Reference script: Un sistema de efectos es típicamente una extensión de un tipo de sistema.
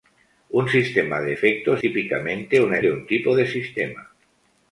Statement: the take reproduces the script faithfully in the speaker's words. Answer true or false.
false